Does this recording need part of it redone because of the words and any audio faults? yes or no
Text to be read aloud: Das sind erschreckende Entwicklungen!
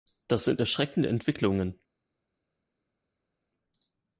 no